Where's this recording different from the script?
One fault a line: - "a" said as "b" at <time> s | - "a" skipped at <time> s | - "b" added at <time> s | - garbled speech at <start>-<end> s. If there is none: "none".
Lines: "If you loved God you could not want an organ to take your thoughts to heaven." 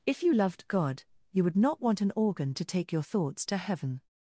- "could" said as "would" at 1.4 s